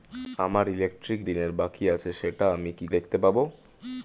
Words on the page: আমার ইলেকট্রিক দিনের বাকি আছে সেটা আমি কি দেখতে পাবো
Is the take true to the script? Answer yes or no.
yes